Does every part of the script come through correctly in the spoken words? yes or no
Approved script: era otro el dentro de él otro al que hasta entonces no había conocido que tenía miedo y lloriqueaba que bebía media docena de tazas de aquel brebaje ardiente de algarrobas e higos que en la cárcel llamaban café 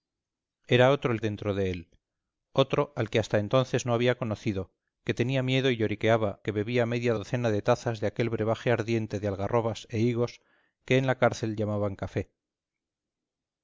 yes